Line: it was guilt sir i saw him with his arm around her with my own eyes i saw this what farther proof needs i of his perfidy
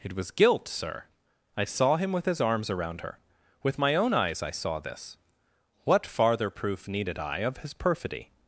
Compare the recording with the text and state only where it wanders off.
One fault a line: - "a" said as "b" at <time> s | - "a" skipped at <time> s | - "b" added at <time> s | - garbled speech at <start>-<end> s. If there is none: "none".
- "arm" said as "arms" at 2.4 s
- "needs" said as "needed" at 6.9 s